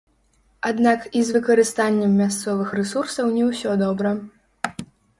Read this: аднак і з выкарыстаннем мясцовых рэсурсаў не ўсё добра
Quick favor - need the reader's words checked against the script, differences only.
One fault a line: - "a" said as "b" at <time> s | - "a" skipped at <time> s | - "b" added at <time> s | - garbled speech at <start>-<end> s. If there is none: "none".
none